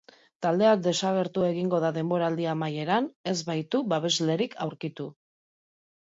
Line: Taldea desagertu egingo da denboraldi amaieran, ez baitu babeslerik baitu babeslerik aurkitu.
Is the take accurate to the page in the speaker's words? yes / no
no